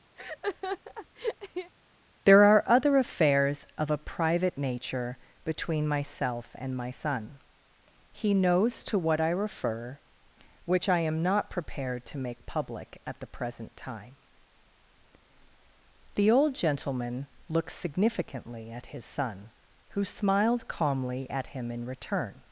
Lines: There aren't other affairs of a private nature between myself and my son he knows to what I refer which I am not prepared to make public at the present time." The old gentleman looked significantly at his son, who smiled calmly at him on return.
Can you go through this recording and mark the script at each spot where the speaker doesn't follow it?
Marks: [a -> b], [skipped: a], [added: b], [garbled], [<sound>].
[laugh] There [aren't -> are] other affairs of a private nature between myself and my son he knows to what I refer which I am not prepared to make public at the present time." The old gentleman looked significantly at his son, who smiled calmly at him [on -> in] return.